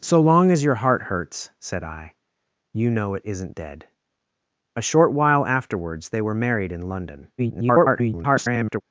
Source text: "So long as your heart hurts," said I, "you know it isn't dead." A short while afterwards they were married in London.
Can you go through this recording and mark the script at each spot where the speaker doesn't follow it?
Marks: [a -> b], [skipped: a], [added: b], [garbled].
"So long as your heart hurts," said I, "you know it isn't dead." A short while afterwards they were married in London. [garbled]